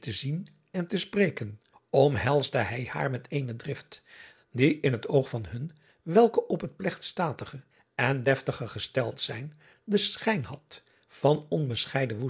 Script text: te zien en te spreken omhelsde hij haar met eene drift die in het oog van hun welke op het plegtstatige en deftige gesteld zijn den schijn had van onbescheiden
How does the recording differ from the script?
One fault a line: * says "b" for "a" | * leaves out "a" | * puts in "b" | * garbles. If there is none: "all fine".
all fine